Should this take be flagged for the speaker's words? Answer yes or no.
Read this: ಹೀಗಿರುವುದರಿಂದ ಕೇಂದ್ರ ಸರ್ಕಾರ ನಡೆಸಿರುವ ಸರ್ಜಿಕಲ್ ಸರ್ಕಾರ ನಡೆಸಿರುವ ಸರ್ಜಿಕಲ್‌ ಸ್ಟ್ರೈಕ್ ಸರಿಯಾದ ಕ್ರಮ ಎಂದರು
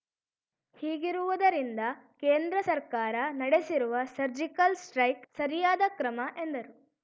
yes